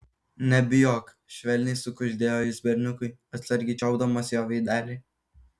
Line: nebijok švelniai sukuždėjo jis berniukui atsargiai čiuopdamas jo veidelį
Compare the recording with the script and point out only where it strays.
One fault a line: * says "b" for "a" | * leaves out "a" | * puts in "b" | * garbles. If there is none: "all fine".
all fine